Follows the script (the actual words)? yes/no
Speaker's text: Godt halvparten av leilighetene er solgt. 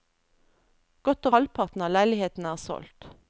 yes